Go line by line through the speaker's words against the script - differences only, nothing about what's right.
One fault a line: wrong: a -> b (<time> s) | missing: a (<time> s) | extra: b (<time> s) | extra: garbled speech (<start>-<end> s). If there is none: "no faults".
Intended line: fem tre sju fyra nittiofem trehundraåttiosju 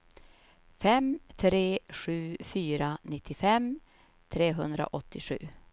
no faults